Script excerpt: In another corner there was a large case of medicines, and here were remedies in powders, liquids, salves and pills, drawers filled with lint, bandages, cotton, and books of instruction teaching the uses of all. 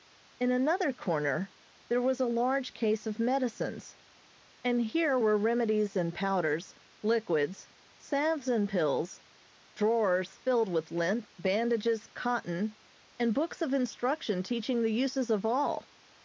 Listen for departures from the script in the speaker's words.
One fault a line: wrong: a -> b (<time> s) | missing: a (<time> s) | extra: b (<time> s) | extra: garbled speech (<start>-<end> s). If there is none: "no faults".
no faults